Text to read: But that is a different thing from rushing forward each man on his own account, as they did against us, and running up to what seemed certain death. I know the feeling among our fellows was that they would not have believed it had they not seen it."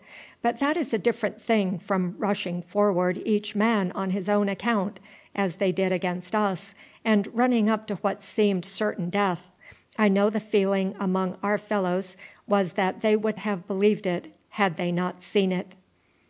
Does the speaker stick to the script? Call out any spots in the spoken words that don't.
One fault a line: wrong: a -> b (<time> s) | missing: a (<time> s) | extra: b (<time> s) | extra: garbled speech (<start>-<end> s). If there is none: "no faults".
missing: not (13.4 s)